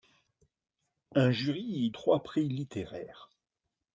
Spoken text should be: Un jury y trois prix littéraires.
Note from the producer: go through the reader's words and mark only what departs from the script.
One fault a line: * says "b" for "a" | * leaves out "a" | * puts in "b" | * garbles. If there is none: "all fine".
all fine